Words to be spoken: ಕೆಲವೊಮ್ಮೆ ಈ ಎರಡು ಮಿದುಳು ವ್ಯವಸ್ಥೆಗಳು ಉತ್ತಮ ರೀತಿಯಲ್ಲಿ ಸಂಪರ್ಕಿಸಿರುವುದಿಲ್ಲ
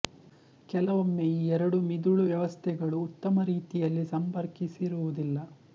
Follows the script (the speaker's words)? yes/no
yes